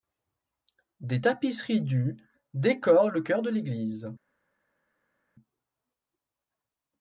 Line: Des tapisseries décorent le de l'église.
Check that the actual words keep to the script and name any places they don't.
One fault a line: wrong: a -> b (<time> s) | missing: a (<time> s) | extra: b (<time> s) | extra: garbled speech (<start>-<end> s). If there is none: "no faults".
extra: du (1.8 s)
extra: chœur (3.2 s)